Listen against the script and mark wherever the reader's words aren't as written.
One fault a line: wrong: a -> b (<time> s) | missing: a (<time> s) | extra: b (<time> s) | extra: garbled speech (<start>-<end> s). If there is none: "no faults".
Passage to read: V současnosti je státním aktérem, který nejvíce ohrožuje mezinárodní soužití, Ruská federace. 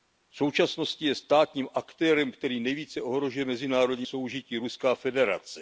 no faults